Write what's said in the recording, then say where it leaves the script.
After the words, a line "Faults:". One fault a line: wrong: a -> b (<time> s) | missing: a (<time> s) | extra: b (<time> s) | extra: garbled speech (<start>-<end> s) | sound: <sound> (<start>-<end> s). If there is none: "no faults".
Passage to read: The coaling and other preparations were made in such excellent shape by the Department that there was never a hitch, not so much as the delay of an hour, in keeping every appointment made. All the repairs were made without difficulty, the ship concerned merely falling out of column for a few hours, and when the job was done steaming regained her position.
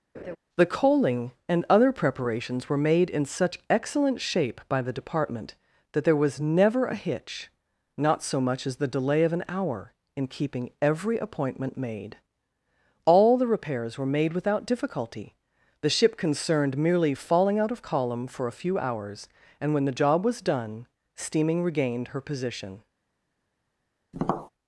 The coaling and other preparations were made in such excellent shape by the Department that there was never a hitch, not so much as the delay of an hour, in keeping every appointment made. All the repairs were made without difficulty, the ship concerned merely falling out of column for a few hours, and when the job was done steaming regained her position.
Faults:
sound: laugh (0.1-0.4 s)
sound: tap (24.1-24.5 s)